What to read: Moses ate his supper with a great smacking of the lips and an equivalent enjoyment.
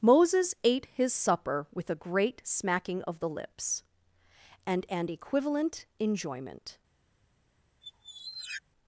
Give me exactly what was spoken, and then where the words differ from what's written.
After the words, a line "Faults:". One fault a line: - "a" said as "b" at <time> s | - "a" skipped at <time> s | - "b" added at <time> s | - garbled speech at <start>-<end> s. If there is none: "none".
Moses ate his supper with a great smacking of the lips and an equivalent enjoyment.
Faults:
none